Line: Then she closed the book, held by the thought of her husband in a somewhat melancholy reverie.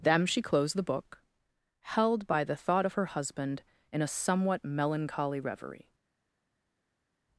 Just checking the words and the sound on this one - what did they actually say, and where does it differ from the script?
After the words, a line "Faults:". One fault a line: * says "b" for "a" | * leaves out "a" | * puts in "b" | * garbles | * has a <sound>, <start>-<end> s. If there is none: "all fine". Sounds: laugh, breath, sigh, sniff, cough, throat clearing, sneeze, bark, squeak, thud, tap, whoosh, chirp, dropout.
Them she closed the book, held by the thought of her husband in a somewhat melancholy reverie.
Faults:
* says "Them" for "Then"